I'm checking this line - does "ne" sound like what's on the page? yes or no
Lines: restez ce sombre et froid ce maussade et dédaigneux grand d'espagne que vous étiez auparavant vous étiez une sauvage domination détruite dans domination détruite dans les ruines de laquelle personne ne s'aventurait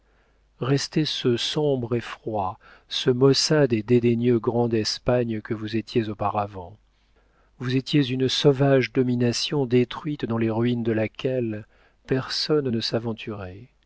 yes